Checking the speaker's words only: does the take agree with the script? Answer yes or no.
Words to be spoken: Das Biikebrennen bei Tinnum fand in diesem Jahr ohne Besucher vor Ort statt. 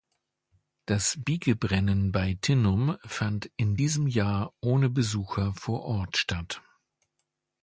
yes